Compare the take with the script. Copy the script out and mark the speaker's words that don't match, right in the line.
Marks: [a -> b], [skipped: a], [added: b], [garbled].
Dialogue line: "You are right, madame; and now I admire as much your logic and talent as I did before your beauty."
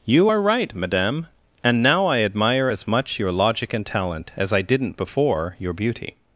"You are right, madame; and now I admire as much your logic and talent as I [did -> didn't] before your beauty."